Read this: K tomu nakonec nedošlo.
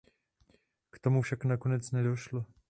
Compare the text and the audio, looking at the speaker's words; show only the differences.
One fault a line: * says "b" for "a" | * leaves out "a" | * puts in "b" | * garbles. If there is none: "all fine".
* puts in "však"